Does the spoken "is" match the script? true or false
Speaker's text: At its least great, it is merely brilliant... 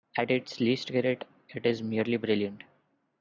true